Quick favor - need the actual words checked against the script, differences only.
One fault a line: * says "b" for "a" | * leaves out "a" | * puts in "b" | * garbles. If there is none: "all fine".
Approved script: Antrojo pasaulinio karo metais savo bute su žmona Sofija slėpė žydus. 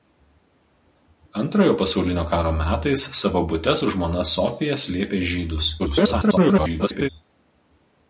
* garbles